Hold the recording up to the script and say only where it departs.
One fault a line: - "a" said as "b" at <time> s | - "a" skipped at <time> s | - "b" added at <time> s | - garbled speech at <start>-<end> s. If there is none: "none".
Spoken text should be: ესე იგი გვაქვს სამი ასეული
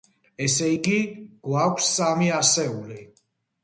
none